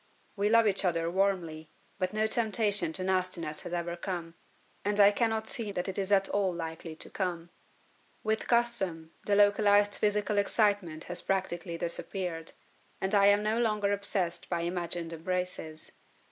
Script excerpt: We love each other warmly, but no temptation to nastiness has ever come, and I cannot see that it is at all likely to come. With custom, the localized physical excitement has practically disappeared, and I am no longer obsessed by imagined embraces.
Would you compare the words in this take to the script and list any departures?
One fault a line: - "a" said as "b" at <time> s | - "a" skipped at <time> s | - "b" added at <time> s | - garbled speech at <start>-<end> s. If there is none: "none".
none